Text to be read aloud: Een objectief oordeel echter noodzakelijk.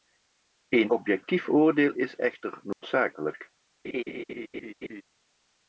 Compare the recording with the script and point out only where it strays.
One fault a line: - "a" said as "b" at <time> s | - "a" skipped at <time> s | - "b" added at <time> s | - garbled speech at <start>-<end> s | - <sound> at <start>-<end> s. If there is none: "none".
- "is" added at 1.9 s
- dropout at 2.7-2.8 s
- laugh at 3.8-5.0 s